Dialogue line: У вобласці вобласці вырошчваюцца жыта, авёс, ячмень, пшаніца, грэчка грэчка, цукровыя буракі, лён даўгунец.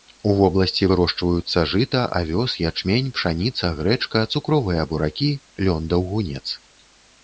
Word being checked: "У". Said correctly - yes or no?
yes